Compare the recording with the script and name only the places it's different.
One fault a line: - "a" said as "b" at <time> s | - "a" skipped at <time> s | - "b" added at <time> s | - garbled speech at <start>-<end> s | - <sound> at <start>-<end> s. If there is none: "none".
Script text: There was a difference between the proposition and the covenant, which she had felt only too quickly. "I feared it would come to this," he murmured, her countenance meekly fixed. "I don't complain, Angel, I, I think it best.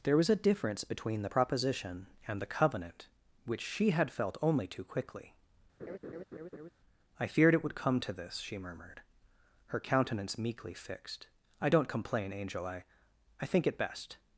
- laugh at 5.8-6.7 s
- "he" said as "she" at 8.4 s